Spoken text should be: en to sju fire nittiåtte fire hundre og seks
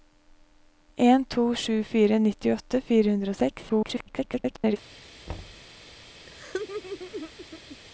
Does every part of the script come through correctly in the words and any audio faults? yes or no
no